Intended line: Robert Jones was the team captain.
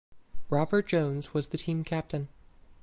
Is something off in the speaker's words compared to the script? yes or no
no